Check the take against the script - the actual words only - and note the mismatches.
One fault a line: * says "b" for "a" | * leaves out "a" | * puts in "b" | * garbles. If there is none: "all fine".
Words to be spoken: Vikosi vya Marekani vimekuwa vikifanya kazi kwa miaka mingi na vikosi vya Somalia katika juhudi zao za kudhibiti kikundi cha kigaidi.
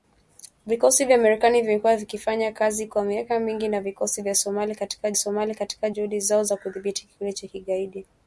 * puts in "Somalia katika"